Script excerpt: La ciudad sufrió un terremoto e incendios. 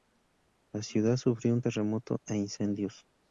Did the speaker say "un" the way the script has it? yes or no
yes